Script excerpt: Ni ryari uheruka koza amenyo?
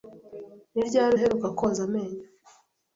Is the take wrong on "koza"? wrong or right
right